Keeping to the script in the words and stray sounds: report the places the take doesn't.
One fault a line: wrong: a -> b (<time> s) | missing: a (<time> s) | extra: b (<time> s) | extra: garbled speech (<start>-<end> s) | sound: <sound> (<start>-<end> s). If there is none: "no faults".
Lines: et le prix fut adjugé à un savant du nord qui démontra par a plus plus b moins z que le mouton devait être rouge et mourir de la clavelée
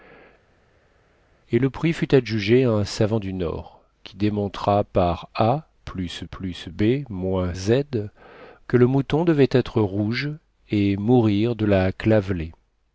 no faults